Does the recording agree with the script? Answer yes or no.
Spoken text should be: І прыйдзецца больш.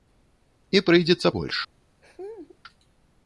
yes